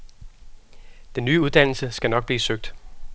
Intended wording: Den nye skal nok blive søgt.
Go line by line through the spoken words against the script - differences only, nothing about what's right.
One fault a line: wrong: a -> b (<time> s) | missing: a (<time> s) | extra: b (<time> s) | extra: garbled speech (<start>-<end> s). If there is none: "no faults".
extra: uddannelse (1.4 s)